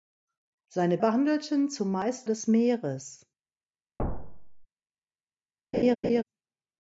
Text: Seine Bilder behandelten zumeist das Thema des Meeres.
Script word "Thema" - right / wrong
wrong